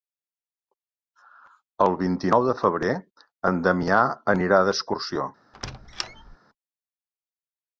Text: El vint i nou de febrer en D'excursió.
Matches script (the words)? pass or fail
fail